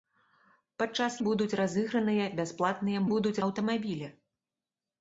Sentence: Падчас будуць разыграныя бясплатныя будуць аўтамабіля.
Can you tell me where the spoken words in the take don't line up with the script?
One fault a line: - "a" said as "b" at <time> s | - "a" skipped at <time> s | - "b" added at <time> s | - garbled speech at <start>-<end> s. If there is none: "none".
none